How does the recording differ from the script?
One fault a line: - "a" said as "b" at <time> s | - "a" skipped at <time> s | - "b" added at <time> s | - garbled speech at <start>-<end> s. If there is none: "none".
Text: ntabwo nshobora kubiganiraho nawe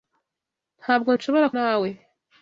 - "kubiganiraho" skipped at 1.5 s